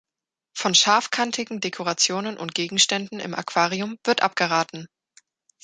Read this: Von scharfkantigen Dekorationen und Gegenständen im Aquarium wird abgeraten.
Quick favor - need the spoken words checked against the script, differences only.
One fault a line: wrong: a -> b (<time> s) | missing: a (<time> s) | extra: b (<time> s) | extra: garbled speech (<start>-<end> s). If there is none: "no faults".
no faults